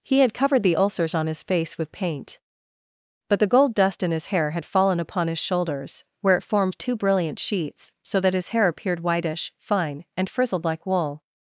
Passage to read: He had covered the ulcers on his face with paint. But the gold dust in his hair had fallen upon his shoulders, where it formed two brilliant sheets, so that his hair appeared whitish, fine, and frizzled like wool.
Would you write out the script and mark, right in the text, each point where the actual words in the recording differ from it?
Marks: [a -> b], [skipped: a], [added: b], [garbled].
He had covered the ulcers on his face with paint. But the gold dust in his hair had fallen upon his shoulders, where it formed two brilliant sheets, so that his hair appeared whitish, fine, and frizzled like wool.